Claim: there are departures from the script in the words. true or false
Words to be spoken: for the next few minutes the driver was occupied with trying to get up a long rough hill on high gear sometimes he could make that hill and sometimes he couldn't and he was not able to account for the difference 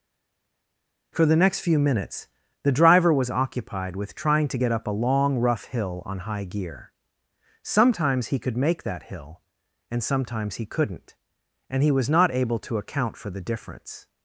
false